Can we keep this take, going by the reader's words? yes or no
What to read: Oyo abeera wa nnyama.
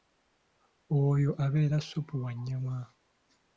no